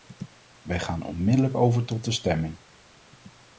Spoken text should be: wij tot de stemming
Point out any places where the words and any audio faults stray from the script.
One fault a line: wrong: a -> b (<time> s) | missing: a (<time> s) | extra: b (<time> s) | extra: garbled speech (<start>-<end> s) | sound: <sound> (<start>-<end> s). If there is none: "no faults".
extra: gaan onmiddellijk over (0.8 s)